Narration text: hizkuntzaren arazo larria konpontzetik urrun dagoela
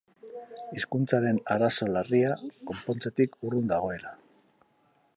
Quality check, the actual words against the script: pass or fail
pass